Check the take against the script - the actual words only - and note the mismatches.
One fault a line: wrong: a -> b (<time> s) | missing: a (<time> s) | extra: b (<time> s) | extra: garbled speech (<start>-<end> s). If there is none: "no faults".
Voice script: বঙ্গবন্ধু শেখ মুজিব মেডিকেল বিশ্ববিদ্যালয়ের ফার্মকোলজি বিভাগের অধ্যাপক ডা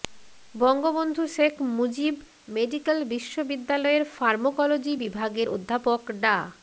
no faults